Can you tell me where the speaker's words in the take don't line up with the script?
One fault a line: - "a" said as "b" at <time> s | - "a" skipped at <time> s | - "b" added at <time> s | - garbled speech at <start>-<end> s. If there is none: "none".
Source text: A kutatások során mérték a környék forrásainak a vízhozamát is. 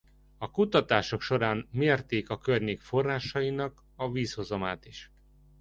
none